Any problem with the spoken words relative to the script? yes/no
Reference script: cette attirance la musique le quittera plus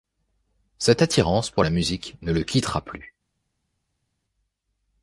yes